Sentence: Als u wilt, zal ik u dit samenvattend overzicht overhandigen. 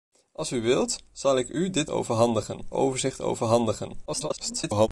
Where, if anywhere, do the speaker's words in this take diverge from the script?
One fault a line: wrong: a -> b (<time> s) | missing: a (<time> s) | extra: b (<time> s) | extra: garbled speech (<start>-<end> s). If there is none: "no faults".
wrong: samenvattend -> overhandigen (1.9 s)
extra: garbled speech (4.1-4.9 s)